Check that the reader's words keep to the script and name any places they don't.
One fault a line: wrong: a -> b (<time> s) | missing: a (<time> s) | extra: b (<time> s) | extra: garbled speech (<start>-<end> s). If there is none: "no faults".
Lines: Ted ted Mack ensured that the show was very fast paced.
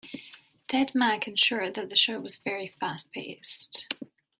missing: ted (0.9 s)